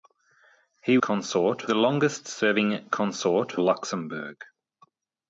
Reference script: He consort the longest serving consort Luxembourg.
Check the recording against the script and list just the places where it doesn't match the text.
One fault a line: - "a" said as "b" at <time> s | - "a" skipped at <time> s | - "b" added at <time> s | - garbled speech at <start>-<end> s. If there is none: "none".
none